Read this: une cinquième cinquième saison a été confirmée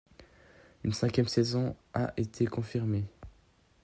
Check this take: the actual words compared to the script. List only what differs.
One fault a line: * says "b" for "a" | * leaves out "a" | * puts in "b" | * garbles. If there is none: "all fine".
* leaves out "cinquième"